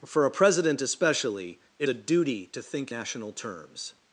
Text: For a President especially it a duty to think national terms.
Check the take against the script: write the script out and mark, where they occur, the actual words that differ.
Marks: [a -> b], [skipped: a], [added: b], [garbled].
For a President especially it a duty to think national terms.